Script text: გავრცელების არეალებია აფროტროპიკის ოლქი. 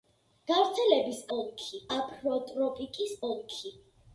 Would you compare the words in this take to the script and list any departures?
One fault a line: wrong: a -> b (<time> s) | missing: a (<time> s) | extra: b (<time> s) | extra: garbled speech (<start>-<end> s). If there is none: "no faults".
wrong: არეალებია -> ოლქი (1.4 s)